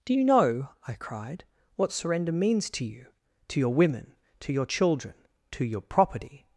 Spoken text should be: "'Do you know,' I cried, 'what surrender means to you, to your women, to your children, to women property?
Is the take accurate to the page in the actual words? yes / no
no